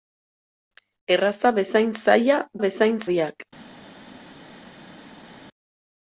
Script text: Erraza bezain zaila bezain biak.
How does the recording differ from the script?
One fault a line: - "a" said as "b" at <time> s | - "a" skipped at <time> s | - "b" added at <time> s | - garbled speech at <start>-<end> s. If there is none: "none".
none